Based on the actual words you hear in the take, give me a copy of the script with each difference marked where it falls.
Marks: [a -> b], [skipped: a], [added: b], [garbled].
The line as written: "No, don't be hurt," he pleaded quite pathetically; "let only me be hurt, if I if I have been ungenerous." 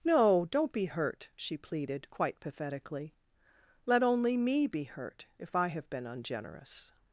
"No, don't be hurt," [he -> she] pleaded quite pathetically; "let only me be hurt, if I [skipped: if I] have been ungenerous."